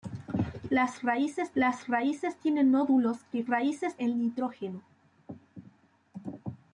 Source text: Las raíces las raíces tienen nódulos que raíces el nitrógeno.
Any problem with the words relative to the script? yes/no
no